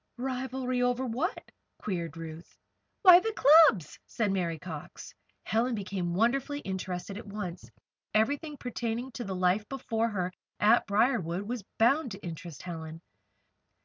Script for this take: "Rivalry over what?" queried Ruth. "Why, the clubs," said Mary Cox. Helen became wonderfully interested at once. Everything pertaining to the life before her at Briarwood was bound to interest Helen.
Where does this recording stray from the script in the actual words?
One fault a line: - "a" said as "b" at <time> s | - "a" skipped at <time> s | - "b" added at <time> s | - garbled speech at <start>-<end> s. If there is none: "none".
none